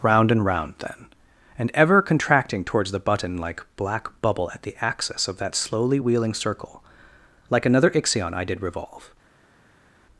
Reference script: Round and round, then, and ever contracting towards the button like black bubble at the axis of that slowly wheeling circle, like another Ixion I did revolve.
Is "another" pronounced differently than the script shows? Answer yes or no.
no